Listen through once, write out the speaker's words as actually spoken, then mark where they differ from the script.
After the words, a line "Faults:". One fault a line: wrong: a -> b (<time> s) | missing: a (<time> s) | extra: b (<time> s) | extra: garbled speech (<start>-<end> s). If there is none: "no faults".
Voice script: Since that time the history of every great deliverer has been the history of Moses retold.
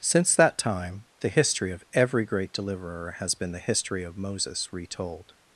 Since that time the history of every great deliverer has been the history of Moses retold.
Faults:
no faults